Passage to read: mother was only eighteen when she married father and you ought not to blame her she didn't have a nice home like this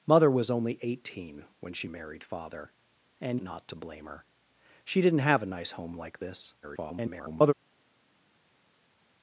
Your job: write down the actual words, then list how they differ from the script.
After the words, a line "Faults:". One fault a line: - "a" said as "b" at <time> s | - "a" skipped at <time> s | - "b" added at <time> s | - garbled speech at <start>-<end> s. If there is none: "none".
mother was only eighteen when she married father and not to blame her she didn't have a nice home like this [garbled]
Faults:
- "you ought" skipped at 3.4 s
- garbled speech at 6.6-7.5 s